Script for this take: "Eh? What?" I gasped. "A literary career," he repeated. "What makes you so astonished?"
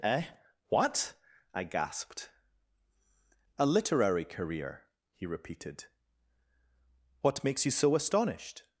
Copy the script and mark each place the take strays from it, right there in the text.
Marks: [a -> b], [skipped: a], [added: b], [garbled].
"Eh? What?" I gasped. "A literary career," he repeated. "What makes you so astonished?"